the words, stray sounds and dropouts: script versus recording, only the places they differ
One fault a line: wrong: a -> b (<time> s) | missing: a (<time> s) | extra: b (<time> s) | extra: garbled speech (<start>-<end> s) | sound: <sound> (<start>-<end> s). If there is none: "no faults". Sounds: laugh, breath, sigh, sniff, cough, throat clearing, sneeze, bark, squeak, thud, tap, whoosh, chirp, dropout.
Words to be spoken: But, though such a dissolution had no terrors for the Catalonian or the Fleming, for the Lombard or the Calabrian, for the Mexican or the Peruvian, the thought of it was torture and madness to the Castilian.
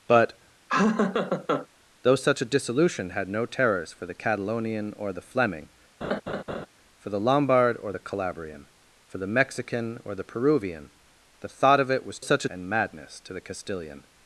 sound: laugh (0.7-1.7 s)
sound: laugh (6.0-6.7 s)
wrong: torture -> such (12.2 s)